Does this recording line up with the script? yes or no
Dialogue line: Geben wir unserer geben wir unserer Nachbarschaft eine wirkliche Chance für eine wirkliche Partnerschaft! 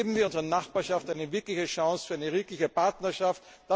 no